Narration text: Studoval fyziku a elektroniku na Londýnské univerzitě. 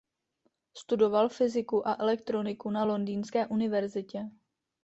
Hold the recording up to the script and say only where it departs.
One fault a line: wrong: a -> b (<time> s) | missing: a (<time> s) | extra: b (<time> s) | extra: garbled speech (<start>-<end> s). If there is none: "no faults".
no faults